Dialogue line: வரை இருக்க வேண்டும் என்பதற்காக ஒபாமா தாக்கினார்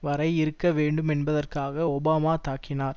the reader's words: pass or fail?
pass